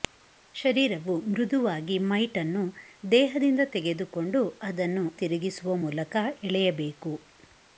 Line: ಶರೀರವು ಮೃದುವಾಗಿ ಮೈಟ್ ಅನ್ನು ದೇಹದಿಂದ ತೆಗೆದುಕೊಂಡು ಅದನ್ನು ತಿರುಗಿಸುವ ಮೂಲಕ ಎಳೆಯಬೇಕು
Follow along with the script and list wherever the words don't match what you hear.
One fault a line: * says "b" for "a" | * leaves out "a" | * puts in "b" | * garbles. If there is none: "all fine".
all fine